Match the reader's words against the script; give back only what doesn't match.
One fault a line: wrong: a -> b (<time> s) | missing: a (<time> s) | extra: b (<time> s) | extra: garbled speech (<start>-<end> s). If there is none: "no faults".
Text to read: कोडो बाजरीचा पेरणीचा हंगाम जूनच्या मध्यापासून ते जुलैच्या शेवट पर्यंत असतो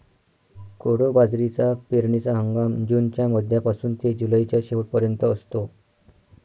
no faults